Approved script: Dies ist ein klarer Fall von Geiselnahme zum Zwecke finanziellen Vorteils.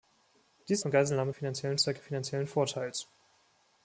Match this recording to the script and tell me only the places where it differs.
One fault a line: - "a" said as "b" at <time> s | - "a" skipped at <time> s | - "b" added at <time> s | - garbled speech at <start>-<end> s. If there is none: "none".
- "ein klarer Fall" skipped at 0.8 s
- "zum" said as "finanziellen" at 1.3 s